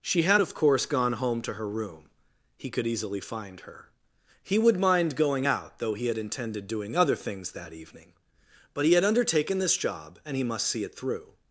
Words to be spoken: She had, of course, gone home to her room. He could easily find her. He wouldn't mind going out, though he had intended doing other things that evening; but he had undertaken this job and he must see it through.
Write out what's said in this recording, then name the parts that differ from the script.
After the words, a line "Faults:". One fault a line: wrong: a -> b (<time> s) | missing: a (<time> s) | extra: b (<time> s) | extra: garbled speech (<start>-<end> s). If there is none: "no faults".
She had, of course, gone home to her room. He could easily find her. He would mind going out, though he had intended doing other things that evening; but he had undertaken this job and he must see it through.
Faults:
wrong: wouldn't -> would (4.6 s)